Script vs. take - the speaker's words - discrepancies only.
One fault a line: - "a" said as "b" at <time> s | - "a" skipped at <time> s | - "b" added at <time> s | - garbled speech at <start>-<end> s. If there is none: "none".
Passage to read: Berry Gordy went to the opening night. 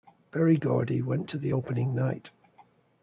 none